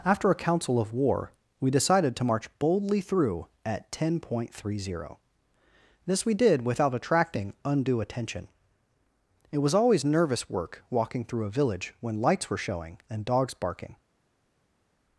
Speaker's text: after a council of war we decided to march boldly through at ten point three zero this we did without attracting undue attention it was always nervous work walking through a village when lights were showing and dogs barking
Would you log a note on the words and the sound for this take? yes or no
no